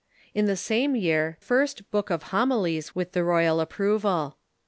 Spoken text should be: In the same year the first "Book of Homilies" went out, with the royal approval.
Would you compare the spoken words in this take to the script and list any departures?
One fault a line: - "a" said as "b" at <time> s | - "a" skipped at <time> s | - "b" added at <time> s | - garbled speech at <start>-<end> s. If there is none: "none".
- "the" skipped at 1.4 s
- "went out" skipped at 2.9 s